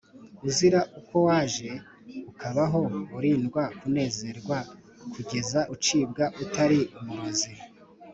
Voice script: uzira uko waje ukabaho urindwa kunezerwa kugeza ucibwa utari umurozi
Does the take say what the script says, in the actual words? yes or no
yes